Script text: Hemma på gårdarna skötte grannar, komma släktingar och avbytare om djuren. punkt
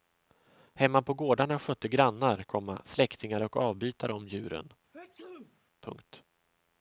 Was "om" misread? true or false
false